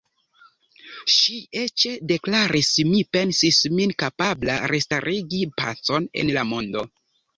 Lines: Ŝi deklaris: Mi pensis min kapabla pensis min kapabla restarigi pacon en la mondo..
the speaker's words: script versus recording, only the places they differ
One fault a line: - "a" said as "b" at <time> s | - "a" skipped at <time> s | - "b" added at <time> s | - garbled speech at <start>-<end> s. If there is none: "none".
- "eĉ" added at 1.6 s
- "pensis min kapabla" skipped at 4.6 s